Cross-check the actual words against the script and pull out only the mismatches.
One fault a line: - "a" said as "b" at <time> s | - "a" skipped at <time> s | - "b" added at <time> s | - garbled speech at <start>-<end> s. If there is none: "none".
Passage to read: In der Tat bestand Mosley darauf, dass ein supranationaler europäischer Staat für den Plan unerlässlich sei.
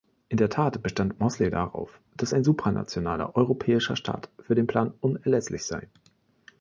none